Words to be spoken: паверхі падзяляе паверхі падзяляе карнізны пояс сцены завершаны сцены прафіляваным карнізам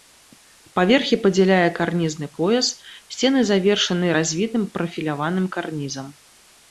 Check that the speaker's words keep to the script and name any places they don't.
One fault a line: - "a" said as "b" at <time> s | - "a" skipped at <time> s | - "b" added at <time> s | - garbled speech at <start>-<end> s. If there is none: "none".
- "паверхі падзяляе" skipped at 1.7 s
- "сцены" said as "развітым" at 4.2 s